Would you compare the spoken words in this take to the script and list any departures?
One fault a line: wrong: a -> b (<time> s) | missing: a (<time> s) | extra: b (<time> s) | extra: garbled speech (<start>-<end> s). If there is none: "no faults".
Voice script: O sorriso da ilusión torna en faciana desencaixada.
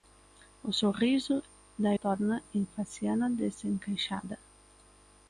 missing: ilusión (1.9 s)